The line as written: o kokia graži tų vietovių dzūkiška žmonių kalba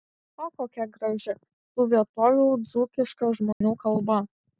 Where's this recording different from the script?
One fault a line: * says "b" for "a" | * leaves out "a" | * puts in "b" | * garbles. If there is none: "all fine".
all fine